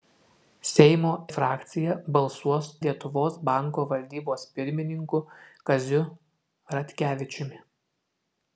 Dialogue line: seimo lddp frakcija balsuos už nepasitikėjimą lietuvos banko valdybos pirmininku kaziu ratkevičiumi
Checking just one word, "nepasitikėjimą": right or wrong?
wrong